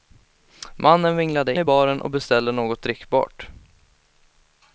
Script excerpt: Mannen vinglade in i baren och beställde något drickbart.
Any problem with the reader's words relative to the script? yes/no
yes